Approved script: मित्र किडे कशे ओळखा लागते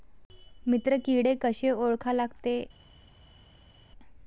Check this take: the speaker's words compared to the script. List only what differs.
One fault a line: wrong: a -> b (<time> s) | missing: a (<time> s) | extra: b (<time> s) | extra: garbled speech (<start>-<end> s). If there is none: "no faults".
no faults